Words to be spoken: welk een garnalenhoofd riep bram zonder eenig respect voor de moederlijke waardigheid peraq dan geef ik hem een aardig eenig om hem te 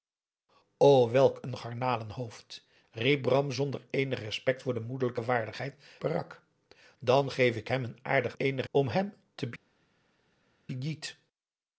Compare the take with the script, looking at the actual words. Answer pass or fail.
pass